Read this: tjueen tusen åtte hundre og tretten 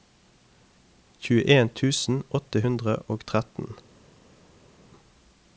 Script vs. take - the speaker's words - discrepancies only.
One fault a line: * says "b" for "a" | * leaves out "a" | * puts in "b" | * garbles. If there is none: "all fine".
all fine